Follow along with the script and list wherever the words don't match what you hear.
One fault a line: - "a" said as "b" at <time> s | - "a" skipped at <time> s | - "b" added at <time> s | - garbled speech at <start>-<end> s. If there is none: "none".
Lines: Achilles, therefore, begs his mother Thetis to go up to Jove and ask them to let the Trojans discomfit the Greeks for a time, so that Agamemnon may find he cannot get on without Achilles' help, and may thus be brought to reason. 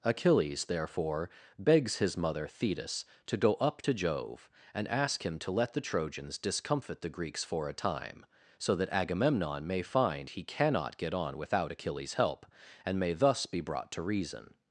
- "them" said as "him" at 5.2 s